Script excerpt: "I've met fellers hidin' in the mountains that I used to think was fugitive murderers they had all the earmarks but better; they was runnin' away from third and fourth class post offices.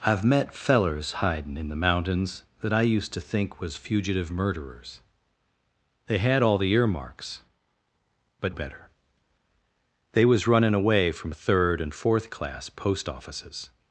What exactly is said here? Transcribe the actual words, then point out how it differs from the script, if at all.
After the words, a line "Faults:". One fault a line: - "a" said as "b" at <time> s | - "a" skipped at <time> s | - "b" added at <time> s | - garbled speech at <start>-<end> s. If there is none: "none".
"I've met fellers hidin' in the mountains that I used to think was fugitive murderers they had all the earmarks but better; they was runnin' away from third and fourth class post offices.
Faults:
none